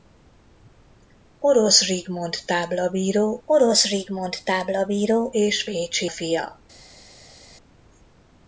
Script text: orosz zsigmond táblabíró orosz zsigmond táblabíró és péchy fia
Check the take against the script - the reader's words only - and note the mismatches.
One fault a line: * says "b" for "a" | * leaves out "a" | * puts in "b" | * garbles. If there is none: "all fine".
all fine